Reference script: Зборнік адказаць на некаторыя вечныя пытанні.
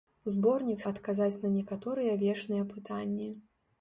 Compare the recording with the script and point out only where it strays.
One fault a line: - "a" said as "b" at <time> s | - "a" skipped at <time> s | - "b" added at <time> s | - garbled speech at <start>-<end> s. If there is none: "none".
none